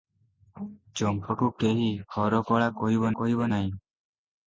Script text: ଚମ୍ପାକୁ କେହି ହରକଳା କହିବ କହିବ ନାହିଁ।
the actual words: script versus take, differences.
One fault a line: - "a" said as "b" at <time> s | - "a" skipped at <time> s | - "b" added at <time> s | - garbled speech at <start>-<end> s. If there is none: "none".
none